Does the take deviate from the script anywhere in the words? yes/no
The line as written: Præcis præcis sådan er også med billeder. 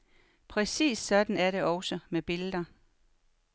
yes